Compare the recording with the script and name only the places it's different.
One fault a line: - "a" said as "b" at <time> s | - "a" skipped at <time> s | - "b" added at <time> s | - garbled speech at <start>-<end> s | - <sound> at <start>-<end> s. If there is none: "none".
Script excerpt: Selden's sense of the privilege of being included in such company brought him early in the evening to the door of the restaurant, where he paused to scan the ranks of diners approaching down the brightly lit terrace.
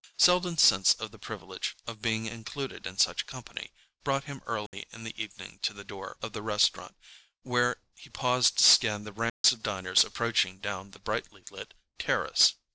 - dropout at 4.7-4.7 s
- dropout at 9.3-9.4 s